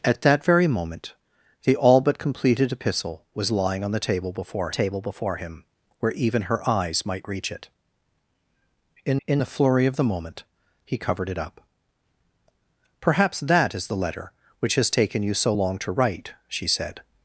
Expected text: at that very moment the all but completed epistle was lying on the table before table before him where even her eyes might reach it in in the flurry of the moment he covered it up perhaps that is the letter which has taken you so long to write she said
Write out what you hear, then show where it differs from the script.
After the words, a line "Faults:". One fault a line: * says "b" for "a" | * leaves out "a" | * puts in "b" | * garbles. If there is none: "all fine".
at that very moment the all but completed epistle was lying on the table before table before him where even her eyes might reach it in in the flurry of the moment he covered it up perhaps that is the letter which has taken you so long to write she said
Faults:
all fine